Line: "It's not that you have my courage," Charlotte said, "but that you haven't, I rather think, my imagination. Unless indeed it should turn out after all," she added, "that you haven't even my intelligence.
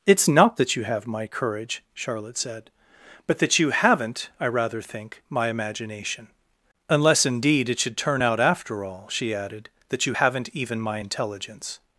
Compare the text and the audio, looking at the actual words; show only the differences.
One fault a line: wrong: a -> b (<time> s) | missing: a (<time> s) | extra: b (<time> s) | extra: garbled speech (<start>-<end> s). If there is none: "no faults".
no faults